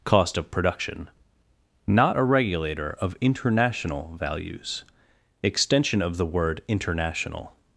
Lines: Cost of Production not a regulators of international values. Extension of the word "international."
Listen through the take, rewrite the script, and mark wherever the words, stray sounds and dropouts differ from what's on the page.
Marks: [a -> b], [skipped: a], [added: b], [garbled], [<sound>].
Cost of Production not a [regulators -> regulator] of international values. Extension of the word "international."